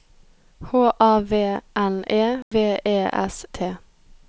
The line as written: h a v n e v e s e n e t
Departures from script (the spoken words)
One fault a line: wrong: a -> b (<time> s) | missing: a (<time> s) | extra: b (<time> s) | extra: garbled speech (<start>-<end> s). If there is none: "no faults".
missing: e n e (3.5 s)